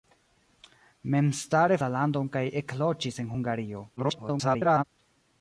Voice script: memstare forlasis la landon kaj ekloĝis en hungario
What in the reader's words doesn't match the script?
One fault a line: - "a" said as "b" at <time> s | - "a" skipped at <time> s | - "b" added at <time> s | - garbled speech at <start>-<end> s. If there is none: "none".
- "forlasis" skipped at 1.8 s
- garbled speech at 4.0-4.8 s